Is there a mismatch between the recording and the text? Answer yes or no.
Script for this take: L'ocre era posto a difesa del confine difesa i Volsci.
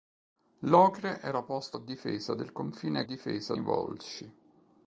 no